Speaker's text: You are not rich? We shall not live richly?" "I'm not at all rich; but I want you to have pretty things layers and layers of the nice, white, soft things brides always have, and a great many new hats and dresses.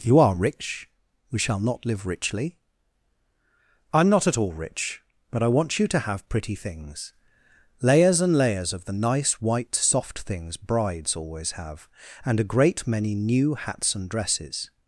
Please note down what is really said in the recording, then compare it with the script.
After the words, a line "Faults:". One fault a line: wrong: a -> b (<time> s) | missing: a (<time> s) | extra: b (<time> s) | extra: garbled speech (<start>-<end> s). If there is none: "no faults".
You are rich? We shall not live richly?" "I'm not at all rich; but I want you to have pretty things layers and layers of the nice, white, soft things brides always have, and a great many new hats and dresses.
Faults:
missing: not (0.3 s)